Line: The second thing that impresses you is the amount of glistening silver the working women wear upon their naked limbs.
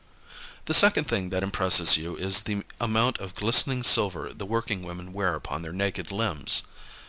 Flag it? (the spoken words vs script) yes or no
no